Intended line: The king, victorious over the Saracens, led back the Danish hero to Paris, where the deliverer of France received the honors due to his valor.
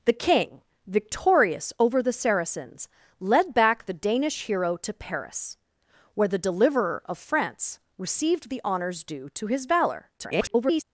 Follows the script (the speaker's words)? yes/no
no